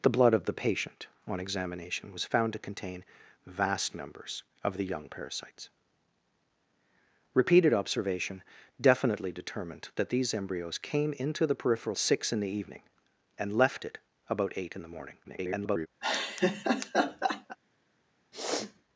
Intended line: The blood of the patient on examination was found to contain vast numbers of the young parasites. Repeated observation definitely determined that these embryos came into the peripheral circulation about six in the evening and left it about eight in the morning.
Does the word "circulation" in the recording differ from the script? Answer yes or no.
yes